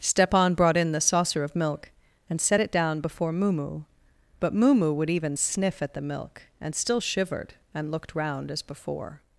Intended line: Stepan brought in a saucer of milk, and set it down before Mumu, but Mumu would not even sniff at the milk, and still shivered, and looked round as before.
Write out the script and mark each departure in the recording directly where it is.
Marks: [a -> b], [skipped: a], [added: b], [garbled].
Stepan brought in [a -> the] saucer of milk, and set it down before Mumu, but Mumu would [skipped: not] even sniff at the milk, and still shivered, and looked round as before.